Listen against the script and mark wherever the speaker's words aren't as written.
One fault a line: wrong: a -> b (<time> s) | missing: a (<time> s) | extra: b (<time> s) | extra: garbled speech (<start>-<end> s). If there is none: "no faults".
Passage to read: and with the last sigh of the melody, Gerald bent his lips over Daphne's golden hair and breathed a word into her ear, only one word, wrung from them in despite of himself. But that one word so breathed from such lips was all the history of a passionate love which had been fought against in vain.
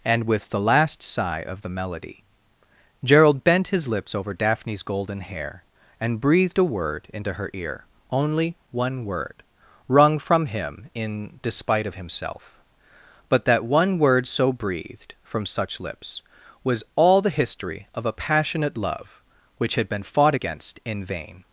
wrong: them -> him (10.5 s)